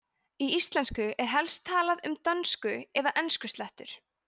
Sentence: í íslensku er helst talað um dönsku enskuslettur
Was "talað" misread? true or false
false